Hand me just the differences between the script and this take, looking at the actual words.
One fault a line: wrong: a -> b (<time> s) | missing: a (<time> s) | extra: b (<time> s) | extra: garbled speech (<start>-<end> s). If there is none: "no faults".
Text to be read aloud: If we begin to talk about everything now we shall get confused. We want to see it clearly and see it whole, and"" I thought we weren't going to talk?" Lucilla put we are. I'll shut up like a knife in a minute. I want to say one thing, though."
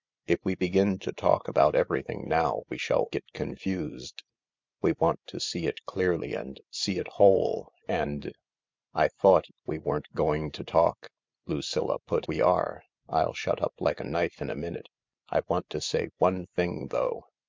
no faults